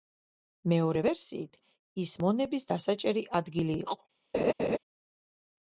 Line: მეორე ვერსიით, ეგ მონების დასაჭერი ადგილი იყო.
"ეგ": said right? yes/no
no